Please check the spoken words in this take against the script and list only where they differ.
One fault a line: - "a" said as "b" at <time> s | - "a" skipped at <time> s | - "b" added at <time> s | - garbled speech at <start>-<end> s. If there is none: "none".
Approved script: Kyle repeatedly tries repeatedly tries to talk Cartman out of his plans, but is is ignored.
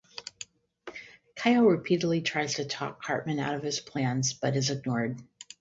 - "repeatedly tries" skipped at 2.5 s
- "is" skipped at 4.7 s